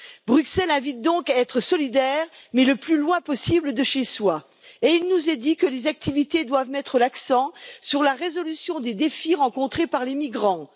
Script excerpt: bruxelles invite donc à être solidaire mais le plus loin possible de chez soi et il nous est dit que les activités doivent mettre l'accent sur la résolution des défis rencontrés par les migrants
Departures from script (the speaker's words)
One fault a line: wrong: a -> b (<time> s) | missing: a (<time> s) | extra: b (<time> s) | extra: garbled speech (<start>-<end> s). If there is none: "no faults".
no faults